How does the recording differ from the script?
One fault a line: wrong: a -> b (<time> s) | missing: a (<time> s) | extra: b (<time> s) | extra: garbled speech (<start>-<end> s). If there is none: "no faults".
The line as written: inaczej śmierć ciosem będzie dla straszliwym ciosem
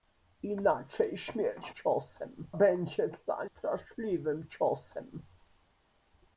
no faults